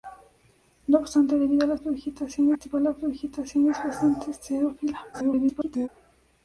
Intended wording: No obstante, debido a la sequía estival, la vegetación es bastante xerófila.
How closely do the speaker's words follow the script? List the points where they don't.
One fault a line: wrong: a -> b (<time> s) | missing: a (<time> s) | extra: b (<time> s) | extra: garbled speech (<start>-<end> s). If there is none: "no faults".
wrong: sequía -> vegetación (1.7 s)
extra: garbled speech (5.1-5.9 s)